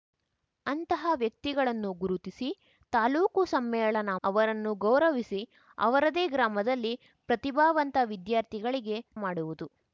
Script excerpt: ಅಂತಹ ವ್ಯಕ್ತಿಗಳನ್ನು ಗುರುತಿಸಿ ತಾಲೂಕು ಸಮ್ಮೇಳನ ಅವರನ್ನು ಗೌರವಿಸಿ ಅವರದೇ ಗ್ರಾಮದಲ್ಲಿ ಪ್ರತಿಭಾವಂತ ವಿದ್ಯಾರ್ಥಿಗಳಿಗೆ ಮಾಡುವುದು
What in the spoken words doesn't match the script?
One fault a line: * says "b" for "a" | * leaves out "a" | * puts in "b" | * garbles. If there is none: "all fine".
all fine